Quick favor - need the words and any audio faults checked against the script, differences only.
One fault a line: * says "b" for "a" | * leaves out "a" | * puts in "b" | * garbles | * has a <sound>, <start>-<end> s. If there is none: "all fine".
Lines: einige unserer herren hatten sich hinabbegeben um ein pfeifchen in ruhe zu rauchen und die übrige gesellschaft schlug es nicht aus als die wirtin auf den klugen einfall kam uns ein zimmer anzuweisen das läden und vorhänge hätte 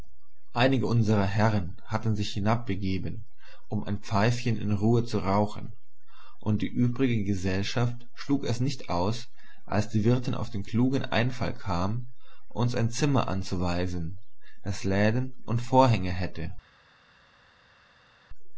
all fine